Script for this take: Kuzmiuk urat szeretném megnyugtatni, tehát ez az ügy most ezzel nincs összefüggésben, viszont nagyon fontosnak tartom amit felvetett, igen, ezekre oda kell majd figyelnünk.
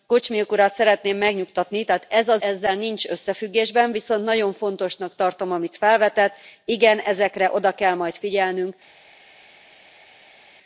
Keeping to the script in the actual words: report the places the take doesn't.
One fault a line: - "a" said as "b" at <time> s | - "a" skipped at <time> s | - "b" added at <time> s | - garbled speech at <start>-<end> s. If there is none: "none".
- "ügy most" skipped at 2.4 s